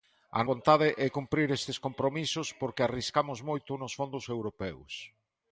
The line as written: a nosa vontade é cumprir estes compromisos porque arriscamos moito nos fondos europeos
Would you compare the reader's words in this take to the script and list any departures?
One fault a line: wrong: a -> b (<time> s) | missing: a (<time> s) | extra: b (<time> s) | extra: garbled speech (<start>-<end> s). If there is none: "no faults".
missing: nosa (0.4 s)